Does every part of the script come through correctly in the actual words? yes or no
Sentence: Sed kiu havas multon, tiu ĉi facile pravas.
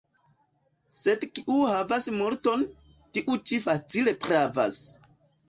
yes